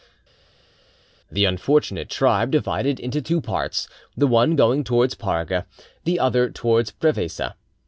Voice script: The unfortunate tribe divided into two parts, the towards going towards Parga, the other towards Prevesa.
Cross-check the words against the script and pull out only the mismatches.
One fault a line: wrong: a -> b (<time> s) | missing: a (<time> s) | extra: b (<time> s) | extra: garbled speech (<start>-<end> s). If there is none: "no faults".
wrong: towards -> one (4.3 s)